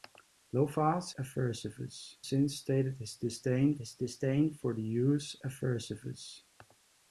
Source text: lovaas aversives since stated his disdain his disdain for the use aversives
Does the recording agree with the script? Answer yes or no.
yes